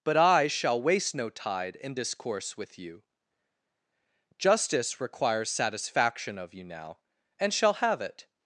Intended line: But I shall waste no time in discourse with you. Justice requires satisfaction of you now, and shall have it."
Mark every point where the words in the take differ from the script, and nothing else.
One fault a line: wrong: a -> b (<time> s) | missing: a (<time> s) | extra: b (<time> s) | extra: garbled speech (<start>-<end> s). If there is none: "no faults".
wrong: time -> tide (1.3 s)